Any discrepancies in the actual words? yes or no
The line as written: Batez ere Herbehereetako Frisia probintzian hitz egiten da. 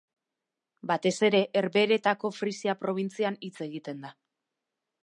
no